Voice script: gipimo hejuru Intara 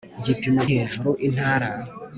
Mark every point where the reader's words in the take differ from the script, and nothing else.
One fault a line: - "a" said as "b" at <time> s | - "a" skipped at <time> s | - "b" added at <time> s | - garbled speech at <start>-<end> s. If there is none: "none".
none